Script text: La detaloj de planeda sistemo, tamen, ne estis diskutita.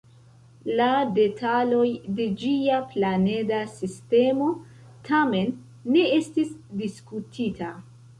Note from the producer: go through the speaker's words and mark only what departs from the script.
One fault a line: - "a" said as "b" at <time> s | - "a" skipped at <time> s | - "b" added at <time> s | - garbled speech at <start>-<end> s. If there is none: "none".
- "ĝia" added at 2.4 s